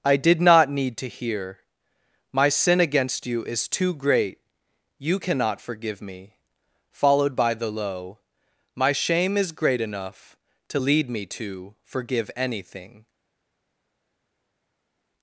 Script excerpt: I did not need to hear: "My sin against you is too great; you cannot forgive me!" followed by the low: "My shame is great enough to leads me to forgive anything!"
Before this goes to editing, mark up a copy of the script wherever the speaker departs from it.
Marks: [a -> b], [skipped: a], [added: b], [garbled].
I did not need to hear: "My sin against you is too great; you cannot forgive me!" followed by the low: "My shame is great enough to [leads -> lead] me to forgive anything!"